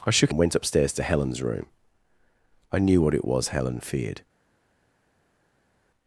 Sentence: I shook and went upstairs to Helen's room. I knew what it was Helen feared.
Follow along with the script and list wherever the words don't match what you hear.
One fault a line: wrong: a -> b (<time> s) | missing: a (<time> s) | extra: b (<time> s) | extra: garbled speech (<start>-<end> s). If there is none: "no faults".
no faults